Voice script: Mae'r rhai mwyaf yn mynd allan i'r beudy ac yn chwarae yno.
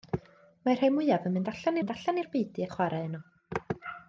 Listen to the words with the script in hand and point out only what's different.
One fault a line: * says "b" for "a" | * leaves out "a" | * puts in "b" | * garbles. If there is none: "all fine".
* puts in "mynd allan"
* leaves out "ac"